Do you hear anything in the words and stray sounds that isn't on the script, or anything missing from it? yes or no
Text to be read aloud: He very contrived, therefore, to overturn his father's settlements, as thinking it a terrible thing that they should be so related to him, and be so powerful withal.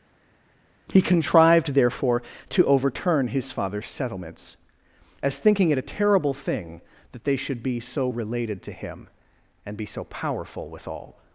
yes